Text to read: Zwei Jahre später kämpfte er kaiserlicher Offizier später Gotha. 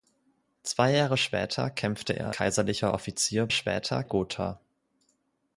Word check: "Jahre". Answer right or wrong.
right